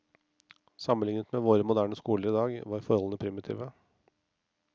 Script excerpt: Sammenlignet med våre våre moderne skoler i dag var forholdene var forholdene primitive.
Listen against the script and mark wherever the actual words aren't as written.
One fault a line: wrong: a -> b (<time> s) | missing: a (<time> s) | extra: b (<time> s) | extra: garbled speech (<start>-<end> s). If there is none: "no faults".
missing: våre (1.6 s)
missing: var forholdene (3.2 s)